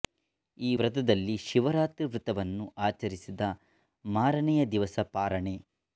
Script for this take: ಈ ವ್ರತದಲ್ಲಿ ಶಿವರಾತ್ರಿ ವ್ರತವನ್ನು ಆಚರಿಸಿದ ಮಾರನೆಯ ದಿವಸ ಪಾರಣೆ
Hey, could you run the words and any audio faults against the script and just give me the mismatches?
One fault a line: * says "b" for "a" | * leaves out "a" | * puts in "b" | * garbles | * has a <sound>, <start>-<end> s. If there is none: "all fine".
all fine